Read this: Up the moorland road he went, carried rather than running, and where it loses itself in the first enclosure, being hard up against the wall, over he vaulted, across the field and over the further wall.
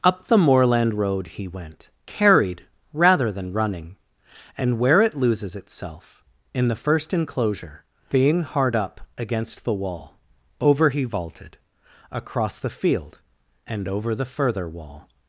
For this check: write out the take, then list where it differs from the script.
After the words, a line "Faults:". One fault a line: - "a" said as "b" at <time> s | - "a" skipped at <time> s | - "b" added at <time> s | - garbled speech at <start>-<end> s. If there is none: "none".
Up the moorland road he went, carried rather than running, and where it loses itself in the first enclosure, being hard up against the wall, over he vaulted, across the field and over the further wall.
Faults:
none